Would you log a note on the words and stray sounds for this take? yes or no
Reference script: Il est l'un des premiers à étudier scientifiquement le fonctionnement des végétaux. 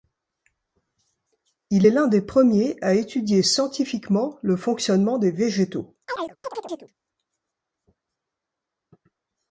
yes